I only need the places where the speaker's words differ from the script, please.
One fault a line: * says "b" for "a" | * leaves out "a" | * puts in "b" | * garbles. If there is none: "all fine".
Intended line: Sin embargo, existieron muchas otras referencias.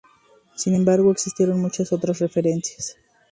all fine